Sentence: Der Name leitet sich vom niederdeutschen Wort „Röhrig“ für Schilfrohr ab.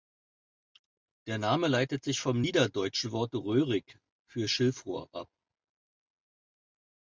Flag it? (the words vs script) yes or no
no